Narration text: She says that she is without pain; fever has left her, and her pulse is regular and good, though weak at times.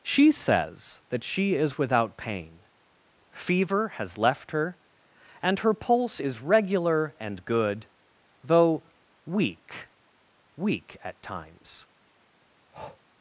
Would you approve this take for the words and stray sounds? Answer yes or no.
no